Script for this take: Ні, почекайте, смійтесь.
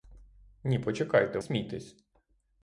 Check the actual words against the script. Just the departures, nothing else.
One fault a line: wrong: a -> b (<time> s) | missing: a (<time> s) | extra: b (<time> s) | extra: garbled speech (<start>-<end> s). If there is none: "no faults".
no faults